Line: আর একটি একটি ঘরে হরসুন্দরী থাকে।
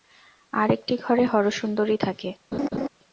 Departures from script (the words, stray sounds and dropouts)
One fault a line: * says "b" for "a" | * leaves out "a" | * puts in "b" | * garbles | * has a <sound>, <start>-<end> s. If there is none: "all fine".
* leaves out "একটি"
* has a laugh, 2.5-2.9 s